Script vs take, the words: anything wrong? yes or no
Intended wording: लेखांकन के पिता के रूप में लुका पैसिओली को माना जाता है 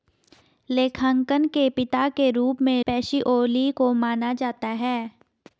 yes